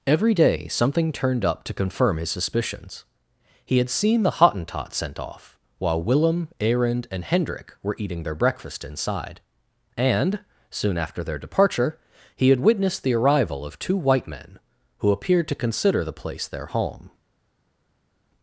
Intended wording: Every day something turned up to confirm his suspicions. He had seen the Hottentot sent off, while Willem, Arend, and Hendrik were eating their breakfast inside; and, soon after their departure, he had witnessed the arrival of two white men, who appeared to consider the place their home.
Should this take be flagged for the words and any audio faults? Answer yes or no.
no